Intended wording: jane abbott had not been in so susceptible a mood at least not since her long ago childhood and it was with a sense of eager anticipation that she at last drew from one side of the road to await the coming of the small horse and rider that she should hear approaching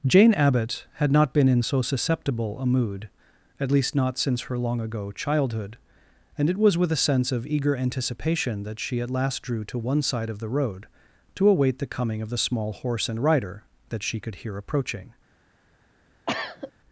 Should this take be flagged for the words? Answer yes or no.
yes